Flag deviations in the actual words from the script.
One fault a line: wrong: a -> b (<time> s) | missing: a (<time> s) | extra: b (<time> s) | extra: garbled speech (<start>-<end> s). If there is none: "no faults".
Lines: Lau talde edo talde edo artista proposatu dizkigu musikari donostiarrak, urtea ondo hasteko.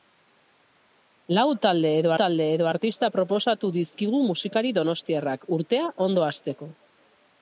no faults